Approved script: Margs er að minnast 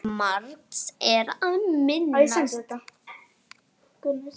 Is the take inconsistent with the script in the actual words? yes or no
no